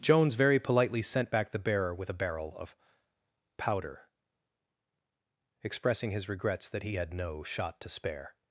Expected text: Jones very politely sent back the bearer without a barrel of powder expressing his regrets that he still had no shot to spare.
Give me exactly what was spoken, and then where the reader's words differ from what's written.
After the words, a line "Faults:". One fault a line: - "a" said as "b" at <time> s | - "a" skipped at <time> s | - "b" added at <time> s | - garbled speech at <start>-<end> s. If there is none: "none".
Jones very politely sent back the bearer with a barrel of powder expressing his regrets that he had no shot to spare.
Faults:
- "without" said as "with" at 1.9 s
- "still" skipped at 6.9 s